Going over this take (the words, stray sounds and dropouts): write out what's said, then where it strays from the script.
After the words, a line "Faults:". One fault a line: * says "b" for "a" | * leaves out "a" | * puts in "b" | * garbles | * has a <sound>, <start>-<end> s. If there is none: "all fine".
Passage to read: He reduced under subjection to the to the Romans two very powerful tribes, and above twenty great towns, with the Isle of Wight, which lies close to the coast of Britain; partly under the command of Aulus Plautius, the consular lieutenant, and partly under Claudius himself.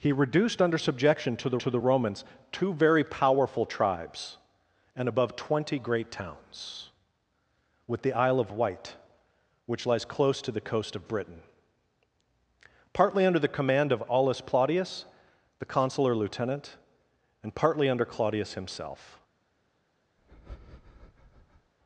He reduced under subjection to the to the Romans two very powerful tribes, and above twenty great towns, with the Isle of Wight, which lies close to the coast of Britain; partly under the command of Aulus Plautius, the consular lieutenant, and partly under Claudius himself.
Faults:
* has a breath, 20.2-21.7 s